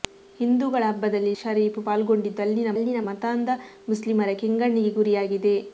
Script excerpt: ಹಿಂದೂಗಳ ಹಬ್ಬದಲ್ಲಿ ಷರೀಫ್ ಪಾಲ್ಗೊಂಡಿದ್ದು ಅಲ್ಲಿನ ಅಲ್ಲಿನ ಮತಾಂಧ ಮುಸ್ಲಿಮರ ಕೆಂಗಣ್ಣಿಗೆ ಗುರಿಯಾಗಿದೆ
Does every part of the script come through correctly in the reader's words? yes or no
yes